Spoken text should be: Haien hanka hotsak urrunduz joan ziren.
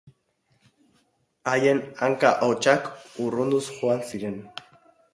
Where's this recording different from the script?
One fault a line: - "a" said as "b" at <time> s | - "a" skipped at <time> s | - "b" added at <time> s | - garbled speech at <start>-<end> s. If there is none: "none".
none